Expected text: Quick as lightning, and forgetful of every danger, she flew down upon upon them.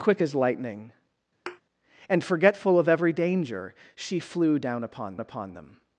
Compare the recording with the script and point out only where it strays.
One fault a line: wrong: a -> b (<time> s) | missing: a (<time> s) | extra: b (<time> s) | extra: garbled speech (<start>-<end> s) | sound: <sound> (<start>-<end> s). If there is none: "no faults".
sound: thud (1.5-1.6 s)